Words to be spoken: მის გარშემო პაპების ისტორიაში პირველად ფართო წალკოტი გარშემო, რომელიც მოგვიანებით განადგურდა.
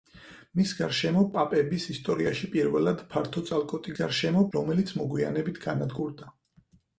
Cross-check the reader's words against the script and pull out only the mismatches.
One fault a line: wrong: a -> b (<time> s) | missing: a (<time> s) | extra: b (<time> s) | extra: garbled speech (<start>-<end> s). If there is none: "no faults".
no faults